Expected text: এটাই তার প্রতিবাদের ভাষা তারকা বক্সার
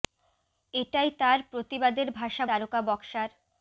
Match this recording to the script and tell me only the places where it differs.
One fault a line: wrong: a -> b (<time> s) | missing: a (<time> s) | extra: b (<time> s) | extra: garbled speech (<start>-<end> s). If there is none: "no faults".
no faults